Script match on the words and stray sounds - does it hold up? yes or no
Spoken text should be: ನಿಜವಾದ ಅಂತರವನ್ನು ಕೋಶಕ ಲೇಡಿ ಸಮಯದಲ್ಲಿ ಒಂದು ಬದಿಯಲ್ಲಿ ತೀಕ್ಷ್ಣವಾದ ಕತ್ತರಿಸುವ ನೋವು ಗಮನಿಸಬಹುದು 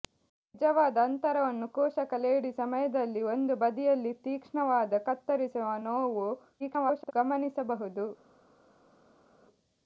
no